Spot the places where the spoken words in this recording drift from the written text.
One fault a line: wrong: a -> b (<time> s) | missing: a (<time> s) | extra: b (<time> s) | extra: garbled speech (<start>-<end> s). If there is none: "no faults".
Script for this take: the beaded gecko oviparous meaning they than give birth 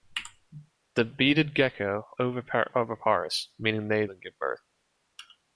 no faults